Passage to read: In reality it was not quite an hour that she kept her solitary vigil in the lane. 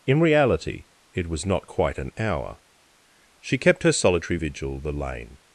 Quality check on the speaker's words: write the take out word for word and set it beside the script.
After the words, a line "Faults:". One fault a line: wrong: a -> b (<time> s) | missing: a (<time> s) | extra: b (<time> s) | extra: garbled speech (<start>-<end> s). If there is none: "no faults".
In reality it was not quite an hour she kept her solitary vigil the lane.
Faults:
missing: that (2.6 s)
missing: in (4.8 s)